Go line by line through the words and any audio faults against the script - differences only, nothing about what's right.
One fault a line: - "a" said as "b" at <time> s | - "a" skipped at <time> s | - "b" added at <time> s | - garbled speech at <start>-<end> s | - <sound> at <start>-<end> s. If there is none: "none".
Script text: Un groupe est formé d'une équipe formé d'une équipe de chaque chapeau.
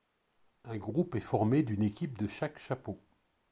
- "formé d'une équipe" skipped at 2.2 s